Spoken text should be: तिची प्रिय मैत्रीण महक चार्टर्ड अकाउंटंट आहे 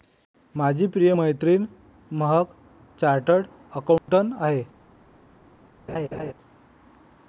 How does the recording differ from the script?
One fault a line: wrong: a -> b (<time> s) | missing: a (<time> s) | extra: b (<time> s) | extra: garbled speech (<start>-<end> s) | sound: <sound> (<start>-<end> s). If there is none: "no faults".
wrong: तिची -> माझी (0.6 s)
sound: dropout (4.0-4.1 s)
sound: laugh (5.9-6.3 s)